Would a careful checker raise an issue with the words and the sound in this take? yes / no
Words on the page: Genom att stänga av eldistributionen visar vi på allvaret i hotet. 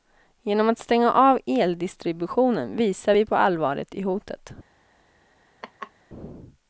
yes